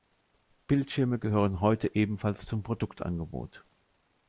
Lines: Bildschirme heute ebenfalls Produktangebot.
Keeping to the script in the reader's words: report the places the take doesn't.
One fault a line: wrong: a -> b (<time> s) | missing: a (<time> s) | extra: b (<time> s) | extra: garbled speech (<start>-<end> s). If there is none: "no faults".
extra: gehören (1.2 s)
extra: zum (2.4 s)